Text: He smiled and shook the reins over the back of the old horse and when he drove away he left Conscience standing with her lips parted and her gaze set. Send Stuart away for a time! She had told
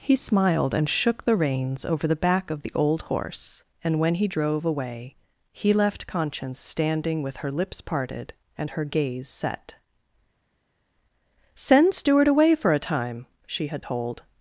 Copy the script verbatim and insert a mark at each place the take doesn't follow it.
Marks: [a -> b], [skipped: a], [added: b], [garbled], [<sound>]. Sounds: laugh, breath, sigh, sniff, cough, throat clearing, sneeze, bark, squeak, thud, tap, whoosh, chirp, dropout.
He smiled and shook the reins over the back of the old horse and when he drove away he left Conscience standing with her lips parted and her gaze set. Send Stuart away for a time! She had told